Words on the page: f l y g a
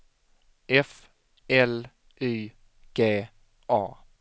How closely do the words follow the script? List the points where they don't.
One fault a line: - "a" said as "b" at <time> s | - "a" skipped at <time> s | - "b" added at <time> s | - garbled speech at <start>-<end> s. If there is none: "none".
none